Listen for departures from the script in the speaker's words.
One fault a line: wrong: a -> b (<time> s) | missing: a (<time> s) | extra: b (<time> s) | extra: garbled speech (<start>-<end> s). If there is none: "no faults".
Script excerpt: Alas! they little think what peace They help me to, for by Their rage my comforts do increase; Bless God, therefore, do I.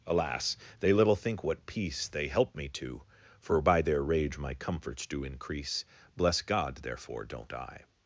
wrong: do -> don't (7.2 s)